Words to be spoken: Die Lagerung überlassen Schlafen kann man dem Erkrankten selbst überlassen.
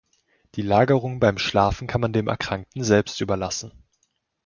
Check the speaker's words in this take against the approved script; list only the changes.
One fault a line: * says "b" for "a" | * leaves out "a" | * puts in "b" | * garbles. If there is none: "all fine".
* says "beim" for "überlassen"